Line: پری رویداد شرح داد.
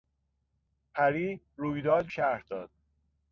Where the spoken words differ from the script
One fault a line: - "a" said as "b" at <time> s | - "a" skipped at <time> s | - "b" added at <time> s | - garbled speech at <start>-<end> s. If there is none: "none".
none